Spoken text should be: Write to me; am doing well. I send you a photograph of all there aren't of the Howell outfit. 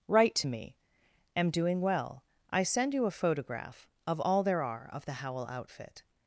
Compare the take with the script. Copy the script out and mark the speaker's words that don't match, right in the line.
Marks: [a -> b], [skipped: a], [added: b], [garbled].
Write to me; am doing well. I send you a photograph of all there [aren't -> are] of the Howell outfit.